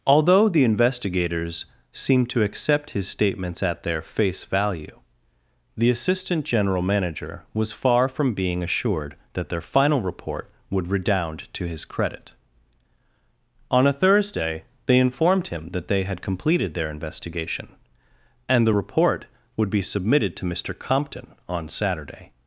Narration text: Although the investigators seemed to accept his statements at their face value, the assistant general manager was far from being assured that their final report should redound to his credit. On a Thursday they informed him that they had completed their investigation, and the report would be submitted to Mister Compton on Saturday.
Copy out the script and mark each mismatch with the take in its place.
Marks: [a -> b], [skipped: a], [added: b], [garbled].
Although the investigators seemed to accept his statements at their face value, the assistant general manager was far from being assured that their final report [should -> would] redound to his credit. On a Thursday they informed him that they had completed their investigation, and the report would be submitted to Mister Compton on Saturday.